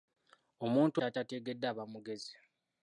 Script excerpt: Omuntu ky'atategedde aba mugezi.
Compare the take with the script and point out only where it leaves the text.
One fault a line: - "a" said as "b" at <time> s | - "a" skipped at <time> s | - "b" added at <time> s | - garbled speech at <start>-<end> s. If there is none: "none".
none